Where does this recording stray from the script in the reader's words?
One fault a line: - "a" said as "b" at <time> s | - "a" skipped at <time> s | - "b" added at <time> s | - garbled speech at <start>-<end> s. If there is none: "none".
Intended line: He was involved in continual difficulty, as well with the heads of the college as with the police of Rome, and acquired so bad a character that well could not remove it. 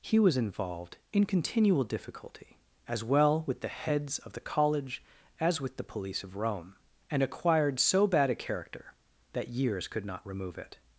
- "well" said as "years" at 9.5 s